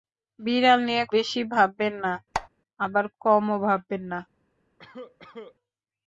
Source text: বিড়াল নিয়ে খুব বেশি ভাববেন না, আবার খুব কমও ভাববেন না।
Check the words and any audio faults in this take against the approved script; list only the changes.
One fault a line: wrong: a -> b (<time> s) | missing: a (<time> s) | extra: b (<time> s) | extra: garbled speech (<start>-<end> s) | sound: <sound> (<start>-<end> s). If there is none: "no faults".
missing: খুব (1.0 s)
sound: squeak (2.3-2.5 s)
missing: খুব (3.0 s)
sound: cough (4.8-5.6 s)